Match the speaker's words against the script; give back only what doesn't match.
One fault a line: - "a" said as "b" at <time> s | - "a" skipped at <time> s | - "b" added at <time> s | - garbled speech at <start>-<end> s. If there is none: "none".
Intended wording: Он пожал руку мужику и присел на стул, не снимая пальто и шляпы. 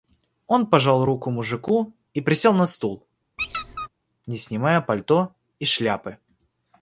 none